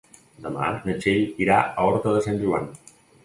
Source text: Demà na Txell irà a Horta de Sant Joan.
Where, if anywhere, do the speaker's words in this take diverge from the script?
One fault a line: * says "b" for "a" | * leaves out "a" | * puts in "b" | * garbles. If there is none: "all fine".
all fine